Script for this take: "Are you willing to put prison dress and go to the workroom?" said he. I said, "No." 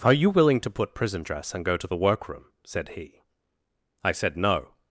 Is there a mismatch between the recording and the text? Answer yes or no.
no